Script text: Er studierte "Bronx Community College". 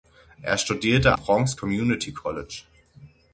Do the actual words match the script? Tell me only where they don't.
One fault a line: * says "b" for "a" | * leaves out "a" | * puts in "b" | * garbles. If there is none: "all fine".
all fine